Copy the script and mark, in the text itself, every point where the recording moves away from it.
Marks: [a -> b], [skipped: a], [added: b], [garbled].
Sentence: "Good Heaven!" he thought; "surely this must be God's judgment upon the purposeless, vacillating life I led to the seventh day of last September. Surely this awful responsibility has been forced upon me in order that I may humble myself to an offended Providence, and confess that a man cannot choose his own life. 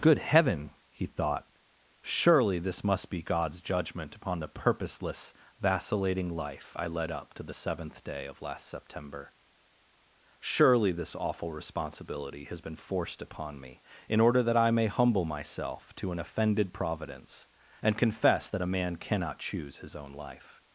"Good Heaven!" he thought; "surely this must be God's judgment upon the purposeless, vacillating life I led [added: up] to the seventh day of last September. Surely this awful responsibility has been forced upon me in order that I may humble myself to an offended Providence, and confess that a man cannot choose his own life.